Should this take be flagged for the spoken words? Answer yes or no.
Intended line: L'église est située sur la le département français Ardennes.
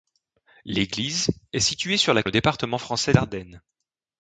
no